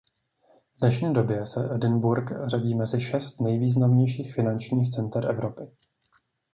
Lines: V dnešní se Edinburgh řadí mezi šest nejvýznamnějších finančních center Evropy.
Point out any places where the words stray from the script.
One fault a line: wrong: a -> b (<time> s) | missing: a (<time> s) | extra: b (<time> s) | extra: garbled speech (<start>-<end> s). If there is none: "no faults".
extra: době (1.1 s)